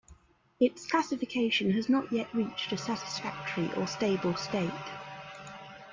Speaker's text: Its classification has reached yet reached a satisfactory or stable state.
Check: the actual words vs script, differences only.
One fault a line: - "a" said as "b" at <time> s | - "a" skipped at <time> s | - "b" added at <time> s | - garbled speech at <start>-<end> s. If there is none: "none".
- "reached" said as "not" at 1.9 s